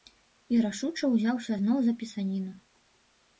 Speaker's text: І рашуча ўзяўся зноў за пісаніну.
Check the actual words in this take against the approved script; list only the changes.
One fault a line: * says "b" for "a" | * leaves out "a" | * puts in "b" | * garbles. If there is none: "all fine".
all fine